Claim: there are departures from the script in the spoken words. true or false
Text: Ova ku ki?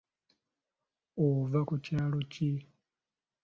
true